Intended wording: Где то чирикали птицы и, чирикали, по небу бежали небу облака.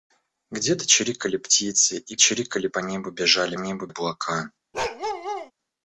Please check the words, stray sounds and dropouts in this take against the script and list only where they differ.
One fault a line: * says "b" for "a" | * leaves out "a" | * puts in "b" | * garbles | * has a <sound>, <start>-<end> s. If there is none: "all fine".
* has a bark, 4.7-5.5 s